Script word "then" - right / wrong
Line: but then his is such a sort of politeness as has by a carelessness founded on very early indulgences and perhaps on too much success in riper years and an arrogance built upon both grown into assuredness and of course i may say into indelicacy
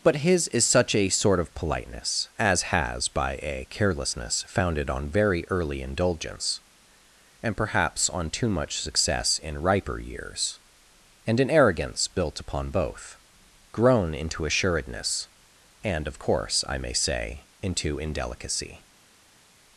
wrong